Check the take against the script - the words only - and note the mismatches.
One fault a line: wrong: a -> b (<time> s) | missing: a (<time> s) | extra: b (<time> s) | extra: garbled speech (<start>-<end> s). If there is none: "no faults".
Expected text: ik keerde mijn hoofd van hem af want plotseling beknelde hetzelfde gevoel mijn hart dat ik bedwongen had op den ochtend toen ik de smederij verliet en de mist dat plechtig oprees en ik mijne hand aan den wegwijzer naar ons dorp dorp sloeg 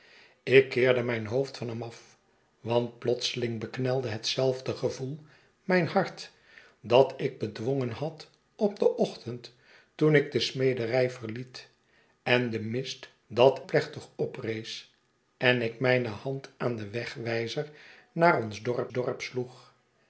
no faults